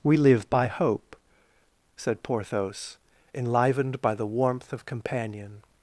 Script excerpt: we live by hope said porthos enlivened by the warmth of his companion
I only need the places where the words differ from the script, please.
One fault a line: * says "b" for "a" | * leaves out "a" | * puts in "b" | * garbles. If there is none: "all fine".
* leaves out "his"